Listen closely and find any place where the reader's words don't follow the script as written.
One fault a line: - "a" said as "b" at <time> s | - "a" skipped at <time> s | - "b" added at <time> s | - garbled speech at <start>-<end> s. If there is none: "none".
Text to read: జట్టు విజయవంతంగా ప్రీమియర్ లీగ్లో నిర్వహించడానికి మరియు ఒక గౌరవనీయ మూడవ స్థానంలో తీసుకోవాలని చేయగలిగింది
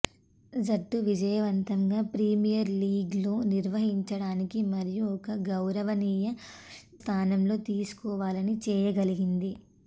- "మూడవ" skipped at 6.3 s